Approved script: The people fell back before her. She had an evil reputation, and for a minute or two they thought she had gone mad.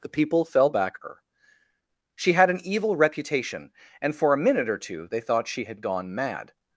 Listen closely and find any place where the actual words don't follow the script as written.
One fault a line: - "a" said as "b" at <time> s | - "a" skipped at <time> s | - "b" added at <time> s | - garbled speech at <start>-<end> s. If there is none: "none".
- "before" skipped at 1.0 s